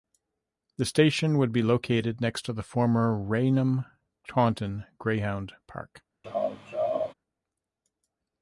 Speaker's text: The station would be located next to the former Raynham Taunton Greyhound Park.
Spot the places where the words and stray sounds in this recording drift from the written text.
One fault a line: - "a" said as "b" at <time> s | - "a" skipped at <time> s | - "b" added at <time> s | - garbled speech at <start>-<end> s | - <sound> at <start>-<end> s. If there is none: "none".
- laugh at 6.2-7.1 s